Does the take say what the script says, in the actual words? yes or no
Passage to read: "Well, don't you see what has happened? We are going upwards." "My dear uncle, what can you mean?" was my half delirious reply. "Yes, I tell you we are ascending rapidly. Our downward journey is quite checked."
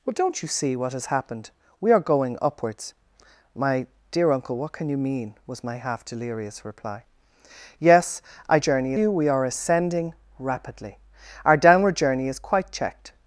no